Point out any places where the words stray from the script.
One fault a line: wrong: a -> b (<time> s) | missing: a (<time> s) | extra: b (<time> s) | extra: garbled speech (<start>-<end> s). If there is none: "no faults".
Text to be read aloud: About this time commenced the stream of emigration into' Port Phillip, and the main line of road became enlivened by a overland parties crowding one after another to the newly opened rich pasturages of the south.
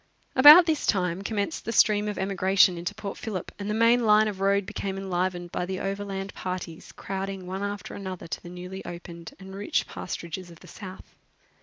wrong: a -> the (5.6 s)
extra: and (9.4 s)